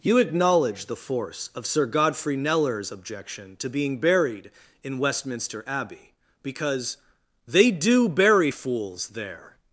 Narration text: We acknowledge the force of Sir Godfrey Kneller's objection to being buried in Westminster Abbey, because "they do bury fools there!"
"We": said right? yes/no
no